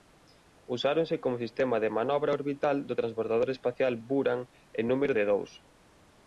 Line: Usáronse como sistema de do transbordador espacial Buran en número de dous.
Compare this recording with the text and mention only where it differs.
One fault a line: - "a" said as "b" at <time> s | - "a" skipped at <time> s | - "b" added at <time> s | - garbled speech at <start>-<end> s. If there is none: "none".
- "manobra orbital" added at 2.0 s